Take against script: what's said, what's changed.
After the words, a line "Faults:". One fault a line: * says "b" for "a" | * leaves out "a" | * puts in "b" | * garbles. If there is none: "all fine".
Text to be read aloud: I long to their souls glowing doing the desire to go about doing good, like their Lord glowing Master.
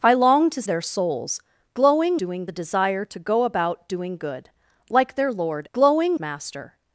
I long to their souls glowing doing the desire to go about doing good, like their Lord glowing Master.
Faults:
all fine